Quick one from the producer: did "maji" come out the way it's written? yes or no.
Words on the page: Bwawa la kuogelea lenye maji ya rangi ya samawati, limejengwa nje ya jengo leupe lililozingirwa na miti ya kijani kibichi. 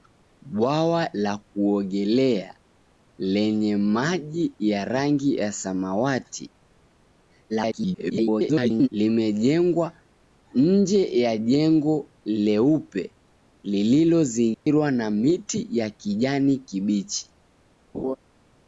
yes